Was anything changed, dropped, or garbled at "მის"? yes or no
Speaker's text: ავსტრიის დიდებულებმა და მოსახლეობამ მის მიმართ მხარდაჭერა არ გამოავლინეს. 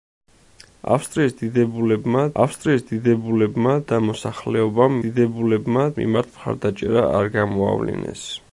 yes